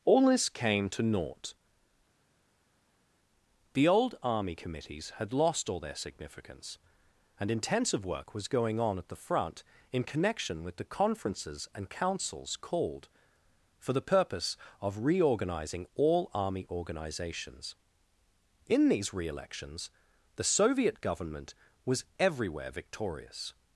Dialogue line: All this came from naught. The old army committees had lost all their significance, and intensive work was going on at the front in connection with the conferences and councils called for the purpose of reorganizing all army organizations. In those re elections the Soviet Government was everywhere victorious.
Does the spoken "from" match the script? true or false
false